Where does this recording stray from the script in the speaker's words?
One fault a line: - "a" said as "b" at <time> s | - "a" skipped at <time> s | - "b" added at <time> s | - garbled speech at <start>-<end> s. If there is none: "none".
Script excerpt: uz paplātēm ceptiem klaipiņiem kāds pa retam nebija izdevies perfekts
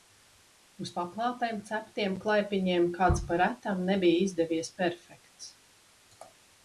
none